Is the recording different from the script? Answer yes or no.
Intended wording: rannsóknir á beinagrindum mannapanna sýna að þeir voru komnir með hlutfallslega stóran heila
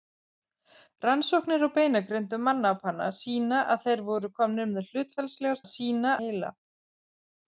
yes